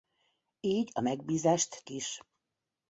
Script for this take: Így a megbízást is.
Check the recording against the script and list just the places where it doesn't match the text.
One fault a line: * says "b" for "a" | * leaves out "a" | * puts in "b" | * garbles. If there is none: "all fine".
all fine